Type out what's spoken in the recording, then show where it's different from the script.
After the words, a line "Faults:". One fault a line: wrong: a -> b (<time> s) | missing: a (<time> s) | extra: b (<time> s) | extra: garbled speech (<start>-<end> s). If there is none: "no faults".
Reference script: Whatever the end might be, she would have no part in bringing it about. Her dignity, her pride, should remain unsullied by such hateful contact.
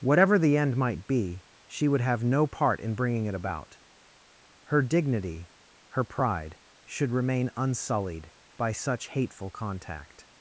Whatever the end might be, she would have no part in bringing it about. Her dignity, her pride, should remain unsullied by such hateful contact.
Faults:
no faults